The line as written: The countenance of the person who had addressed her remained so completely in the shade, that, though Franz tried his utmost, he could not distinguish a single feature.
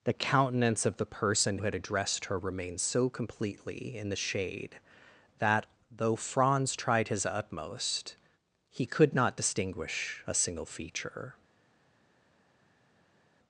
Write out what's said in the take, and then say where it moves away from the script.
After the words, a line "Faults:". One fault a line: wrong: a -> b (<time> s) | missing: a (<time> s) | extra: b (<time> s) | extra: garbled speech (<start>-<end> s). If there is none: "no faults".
The countenance of the person had addressed her remained so completely in the shade, that, though Franz tried his utmost, he could not distinguish a single feature.
Faults:
missing: who (1.6 s)